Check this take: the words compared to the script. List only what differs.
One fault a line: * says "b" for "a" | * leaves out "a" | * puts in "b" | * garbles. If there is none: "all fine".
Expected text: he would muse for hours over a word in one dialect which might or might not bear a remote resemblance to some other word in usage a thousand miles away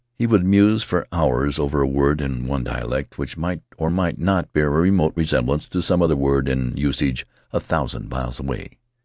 all fine